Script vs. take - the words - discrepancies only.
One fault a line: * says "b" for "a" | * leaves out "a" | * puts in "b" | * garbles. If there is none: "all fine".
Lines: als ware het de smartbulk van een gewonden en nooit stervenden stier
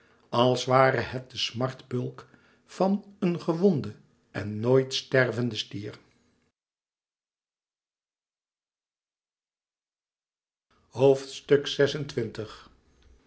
all fine